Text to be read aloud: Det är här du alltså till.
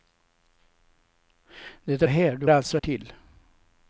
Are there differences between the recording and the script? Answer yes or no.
no